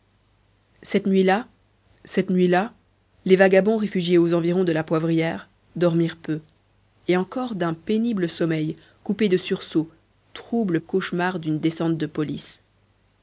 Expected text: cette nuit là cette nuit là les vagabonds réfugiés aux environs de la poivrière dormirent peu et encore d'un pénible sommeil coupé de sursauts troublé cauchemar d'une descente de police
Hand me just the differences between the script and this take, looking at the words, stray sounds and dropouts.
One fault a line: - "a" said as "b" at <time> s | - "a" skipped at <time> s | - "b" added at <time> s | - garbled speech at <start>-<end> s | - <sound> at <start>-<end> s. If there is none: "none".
none